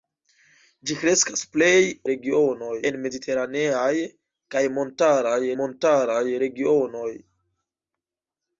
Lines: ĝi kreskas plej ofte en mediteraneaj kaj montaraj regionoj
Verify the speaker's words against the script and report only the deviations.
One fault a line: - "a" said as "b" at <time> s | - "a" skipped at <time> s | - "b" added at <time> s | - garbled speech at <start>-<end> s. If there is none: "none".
- "ofte" said as "regionoj" at 2.1 s
- "montaraj" added at 5.6 s